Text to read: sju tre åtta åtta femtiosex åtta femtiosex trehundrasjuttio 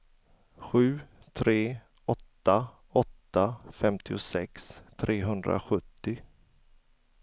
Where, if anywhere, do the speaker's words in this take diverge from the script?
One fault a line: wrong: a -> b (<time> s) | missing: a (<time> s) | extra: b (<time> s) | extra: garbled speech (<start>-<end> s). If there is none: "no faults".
missing: åtta femtiosex (4.8 s)